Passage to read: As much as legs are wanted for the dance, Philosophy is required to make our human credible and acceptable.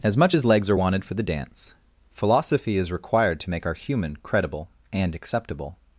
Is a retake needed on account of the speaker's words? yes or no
no